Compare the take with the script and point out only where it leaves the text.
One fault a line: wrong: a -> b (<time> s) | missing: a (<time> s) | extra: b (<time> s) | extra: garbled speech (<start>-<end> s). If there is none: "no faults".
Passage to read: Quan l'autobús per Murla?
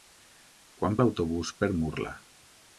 no faults